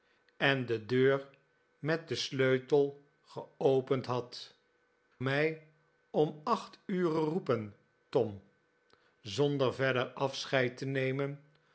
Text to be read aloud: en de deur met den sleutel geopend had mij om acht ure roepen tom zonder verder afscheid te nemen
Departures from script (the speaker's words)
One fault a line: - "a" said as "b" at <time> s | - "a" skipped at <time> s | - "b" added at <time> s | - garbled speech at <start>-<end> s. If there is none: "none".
none